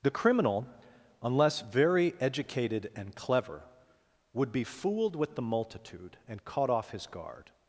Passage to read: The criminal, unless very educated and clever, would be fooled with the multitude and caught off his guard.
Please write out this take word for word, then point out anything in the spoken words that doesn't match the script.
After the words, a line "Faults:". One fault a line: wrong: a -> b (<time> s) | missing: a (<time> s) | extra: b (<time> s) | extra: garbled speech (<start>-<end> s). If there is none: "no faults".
The criminal, unless very educated and clever, would be fooled with the multitude and caught off his guard.
Faults:
no faults